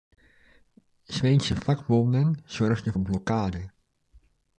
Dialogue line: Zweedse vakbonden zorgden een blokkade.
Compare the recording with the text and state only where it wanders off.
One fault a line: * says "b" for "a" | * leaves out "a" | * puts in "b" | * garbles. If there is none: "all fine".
all fine